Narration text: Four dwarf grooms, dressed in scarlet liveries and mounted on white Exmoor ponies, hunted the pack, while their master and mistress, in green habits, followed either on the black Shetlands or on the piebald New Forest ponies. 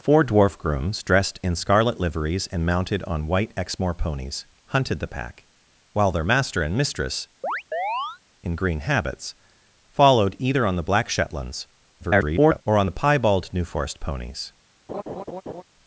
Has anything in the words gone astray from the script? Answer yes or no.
yes